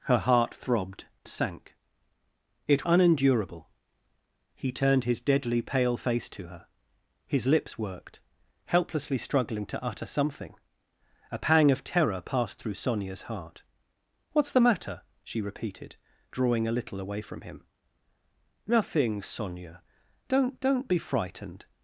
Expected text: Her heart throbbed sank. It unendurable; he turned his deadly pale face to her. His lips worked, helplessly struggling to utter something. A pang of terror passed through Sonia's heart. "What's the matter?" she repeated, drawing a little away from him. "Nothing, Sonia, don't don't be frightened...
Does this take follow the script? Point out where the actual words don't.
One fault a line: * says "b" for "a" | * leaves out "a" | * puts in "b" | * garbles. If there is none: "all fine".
all fine